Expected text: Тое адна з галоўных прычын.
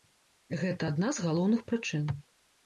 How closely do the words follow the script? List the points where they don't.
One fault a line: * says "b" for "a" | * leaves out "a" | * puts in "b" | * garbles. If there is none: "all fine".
* says "Гэта" for "Тое"